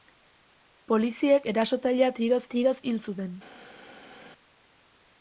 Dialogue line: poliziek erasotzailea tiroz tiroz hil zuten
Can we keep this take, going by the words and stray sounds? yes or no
yes